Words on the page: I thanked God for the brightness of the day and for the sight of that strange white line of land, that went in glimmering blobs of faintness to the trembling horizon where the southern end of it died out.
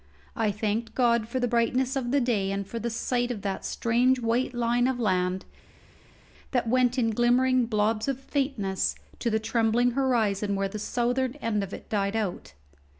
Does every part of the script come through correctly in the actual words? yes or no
yes